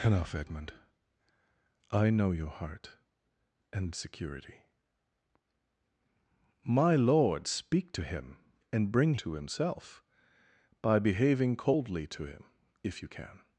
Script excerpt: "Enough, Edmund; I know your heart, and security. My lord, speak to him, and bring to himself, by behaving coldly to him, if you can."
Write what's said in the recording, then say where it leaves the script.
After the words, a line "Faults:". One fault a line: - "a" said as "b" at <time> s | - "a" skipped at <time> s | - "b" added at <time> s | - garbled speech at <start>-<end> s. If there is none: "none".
"Enough, Edmund; I know your heart, and security. My lord, speak to him, and bring to himself, by behaving coldly to him, if you can."
Faults:
none